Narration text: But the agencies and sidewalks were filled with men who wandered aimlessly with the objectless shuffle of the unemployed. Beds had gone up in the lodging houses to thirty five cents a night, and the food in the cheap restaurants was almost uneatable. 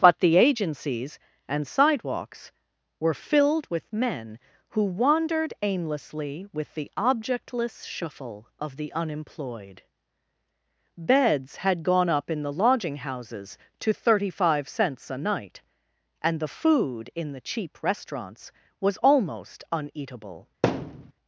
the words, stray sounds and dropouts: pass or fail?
fail